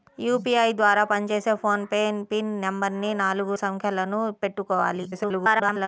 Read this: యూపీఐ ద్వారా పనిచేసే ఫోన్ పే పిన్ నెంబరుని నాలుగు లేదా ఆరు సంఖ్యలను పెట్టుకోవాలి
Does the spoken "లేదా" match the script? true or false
false